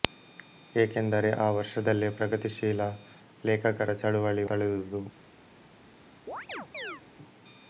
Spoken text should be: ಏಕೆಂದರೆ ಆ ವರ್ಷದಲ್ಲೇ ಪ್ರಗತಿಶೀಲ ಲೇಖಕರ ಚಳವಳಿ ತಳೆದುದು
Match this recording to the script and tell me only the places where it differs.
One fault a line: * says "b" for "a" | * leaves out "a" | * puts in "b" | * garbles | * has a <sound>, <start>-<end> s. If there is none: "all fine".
* has a chirp, 6.3-7.0 s